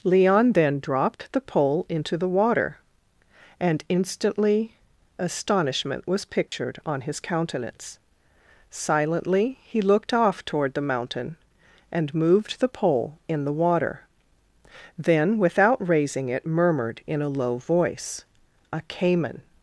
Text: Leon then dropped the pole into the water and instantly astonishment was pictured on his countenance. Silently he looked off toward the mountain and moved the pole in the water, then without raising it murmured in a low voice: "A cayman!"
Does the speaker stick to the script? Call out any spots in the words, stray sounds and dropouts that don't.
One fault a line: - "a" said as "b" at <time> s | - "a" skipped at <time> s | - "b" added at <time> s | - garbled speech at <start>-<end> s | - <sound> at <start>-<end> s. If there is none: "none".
- dropout at 6.5-6.5 s